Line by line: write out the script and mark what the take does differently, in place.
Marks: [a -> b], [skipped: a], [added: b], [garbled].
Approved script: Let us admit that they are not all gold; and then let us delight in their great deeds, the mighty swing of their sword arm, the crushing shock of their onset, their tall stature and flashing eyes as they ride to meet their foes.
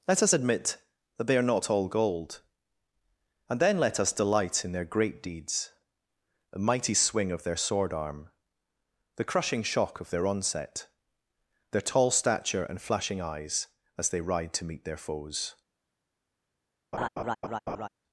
Let us admit that they are not all gold; and then let us delight in their great deeds, the mighty swing of their sword arm, the crushing shock of their onset, their tall stature and flashing eyes as they ride to meet their foes.